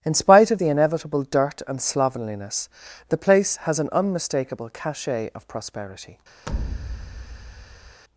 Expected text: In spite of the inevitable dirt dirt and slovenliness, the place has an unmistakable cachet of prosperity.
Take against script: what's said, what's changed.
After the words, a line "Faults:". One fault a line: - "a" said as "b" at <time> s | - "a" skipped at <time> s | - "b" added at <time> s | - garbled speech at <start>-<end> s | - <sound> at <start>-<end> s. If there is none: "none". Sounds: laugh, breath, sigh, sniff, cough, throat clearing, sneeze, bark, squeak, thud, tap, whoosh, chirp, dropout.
In spite of the inevitable dirt and slovenliness, the place has an unmistakable cachet of prosperity.
Faults:
- "dirt" skipped at 1.6 s
- thud at 6.5-8.0 s